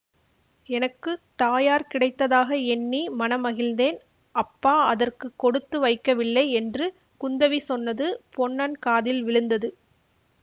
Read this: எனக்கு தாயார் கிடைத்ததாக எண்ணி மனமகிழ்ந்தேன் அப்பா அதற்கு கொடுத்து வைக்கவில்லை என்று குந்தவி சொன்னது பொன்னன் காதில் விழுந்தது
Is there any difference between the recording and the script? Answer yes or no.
no